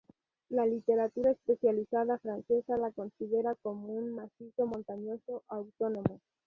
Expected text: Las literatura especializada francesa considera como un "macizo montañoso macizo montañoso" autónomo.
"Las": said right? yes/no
no